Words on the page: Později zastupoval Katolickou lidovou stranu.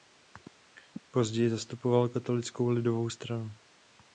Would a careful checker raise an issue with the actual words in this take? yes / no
no